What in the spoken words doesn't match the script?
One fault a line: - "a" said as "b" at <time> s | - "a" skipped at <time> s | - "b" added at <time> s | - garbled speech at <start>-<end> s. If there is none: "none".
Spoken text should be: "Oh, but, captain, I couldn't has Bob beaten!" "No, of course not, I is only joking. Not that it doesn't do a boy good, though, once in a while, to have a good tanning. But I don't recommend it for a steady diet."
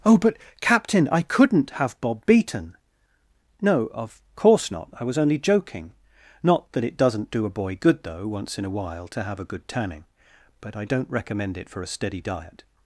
- "has" said as "have" at 1.7 s
- "is" said as "was" at 5.0 s